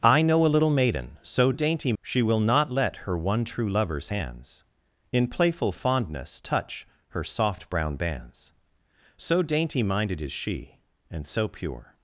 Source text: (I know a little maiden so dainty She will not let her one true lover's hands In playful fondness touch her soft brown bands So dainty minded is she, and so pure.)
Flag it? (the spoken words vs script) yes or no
no